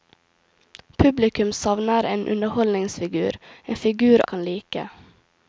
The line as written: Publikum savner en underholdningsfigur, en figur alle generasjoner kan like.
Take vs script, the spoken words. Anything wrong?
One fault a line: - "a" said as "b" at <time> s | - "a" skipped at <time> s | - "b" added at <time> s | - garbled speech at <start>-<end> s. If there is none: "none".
- "alle generasjoner" skipped at 4.2 s